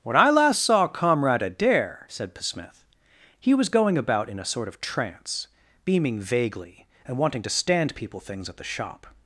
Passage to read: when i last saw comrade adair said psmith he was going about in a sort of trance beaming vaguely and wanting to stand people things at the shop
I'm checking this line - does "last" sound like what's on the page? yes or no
yes